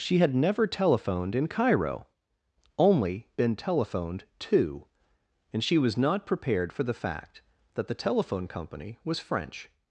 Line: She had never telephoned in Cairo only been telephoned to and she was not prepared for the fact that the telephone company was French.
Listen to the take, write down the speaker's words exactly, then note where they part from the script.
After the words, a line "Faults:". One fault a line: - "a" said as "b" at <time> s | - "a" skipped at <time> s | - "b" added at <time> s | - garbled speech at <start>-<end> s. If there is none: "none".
She had never telephoned in Cairo only been telephoned to and she was not prepared for the fact that the telephone company was French.
Faults:
none